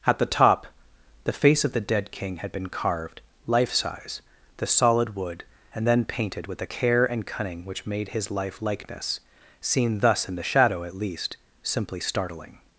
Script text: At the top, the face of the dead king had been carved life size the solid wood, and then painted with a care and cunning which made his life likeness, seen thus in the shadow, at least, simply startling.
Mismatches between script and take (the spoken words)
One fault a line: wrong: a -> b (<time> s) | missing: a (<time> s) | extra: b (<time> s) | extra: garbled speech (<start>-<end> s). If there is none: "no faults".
no faults